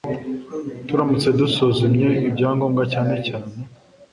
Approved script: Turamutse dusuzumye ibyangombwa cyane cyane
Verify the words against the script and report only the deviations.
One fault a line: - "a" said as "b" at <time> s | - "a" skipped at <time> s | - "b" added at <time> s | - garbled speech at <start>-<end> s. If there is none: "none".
none